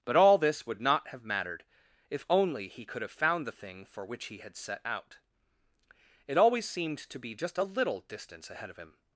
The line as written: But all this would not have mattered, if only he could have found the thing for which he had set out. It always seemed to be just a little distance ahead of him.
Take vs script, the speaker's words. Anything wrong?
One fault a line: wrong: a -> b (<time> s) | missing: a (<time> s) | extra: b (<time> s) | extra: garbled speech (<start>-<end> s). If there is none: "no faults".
no faults